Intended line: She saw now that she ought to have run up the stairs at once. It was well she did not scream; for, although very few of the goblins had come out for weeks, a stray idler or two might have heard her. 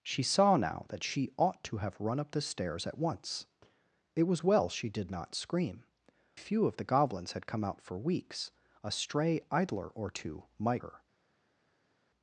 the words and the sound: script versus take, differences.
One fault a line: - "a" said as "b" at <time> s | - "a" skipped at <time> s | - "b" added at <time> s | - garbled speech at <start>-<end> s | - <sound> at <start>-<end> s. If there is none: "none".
- "for although very" skipped at 5.8 s
- "have heard" skipped at 10.8 s